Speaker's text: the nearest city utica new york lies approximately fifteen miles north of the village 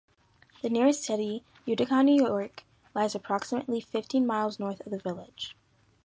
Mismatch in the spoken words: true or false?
false